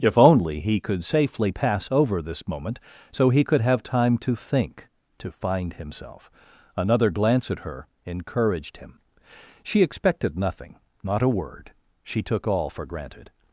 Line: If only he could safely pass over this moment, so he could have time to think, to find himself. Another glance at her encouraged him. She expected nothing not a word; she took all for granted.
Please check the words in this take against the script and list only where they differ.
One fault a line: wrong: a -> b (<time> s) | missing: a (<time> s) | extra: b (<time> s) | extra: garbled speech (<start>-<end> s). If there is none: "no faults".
no faults